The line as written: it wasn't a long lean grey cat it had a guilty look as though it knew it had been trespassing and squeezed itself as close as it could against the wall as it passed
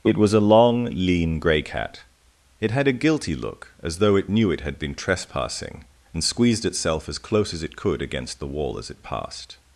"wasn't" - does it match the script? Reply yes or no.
no